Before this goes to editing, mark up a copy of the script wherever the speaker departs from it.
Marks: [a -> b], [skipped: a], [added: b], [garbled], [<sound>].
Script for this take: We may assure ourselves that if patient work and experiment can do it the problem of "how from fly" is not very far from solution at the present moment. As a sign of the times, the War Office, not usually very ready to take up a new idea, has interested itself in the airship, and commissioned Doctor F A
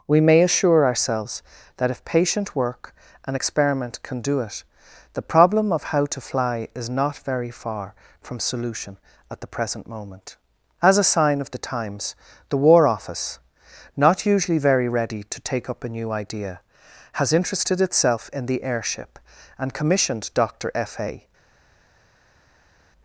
We may assure ourselves that if patient work and experiment can do it the problem of "how [from -> to] fly" is not very far from solution at the present moment. As a sign of the times, the War Office, not usually very ready to take up a new idea, has interested itself in the airship, and commissioned Doctor F A